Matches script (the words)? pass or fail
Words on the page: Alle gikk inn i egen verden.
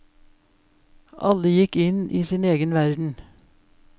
fail